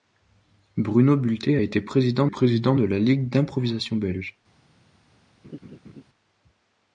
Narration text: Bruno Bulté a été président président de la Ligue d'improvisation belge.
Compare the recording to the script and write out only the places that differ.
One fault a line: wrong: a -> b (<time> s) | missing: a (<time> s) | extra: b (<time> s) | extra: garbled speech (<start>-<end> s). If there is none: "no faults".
no faults